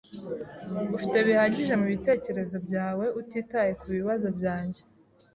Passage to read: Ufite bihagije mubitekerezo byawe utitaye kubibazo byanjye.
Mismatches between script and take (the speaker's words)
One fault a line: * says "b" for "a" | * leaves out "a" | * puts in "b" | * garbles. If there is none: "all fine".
all fine